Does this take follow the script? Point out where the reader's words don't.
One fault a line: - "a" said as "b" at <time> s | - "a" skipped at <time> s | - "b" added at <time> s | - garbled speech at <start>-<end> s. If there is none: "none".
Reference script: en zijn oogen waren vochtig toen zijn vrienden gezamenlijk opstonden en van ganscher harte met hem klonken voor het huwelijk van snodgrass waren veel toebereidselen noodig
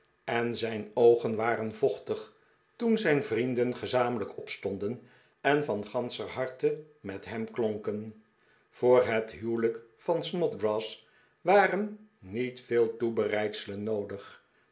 - "niet" added at 12.2 s